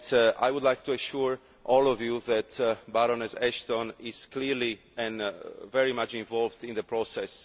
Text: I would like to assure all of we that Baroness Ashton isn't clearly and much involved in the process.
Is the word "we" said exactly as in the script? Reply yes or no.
no